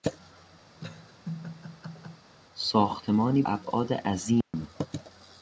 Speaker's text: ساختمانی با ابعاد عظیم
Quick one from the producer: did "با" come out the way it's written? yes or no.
no